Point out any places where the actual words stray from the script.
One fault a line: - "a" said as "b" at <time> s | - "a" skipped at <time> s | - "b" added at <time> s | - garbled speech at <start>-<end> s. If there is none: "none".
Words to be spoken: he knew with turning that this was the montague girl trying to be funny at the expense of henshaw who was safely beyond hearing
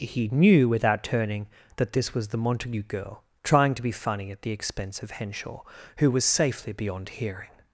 - "with" said as "without" at 0.7 s